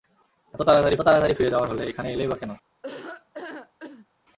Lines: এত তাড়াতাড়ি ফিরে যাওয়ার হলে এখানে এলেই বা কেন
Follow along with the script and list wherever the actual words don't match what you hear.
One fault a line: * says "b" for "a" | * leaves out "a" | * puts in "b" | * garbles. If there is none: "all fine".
* puts in "তাড়াতাড়ি"